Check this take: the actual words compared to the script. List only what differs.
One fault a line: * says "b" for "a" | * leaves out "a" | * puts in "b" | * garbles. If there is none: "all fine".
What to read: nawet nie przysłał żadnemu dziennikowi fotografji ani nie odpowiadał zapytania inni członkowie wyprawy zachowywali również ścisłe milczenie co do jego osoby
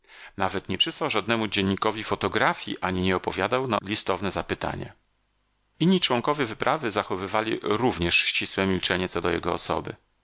* puts in "na listowne"